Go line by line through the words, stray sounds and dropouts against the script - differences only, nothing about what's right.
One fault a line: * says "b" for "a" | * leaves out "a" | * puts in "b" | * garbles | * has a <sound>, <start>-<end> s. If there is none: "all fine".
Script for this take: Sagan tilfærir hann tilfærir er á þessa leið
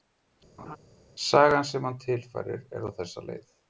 * has a laugh, 0.6-0.8 s
* says "sem" for "tilfærir"